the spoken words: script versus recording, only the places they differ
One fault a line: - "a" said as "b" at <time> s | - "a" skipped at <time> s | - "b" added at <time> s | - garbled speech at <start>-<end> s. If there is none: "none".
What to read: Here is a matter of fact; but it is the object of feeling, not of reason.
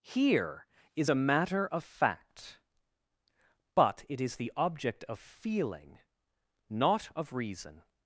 none